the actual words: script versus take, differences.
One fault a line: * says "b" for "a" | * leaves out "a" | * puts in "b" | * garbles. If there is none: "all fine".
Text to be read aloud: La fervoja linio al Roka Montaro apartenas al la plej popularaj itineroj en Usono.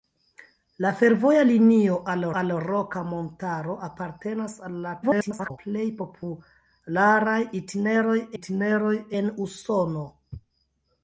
* puts in "al"
* garbles
* puts in "itineroj"